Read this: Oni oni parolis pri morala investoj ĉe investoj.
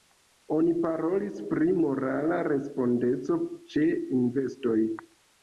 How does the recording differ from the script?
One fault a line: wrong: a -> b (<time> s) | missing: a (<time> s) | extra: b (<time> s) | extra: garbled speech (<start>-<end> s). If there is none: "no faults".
missing: oni (0.7 s)
wrong: investoj -> respondeco (2.5 s)